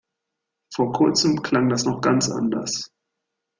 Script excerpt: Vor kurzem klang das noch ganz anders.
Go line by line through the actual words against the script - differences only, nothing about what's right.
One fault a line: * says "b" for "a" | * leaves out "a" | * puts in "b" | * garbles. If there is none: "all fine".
all fine